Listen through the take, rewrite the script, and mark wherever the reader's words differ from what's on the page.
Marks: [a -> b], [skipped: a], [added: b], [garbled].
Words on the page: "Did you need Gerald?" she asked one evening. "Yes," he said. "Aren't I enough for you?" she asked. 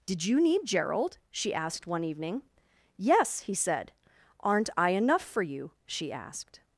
"Did you need Gerald?" she asked one evening. "Yes," he said. "Aren't I enough for you?" she asked.